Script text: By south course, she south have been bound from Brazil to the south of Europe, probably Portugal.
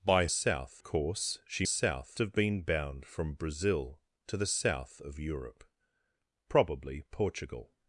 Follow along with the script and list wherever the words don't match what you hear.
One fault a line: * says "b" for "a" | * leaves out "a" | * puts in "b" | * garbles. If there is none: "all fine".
all fine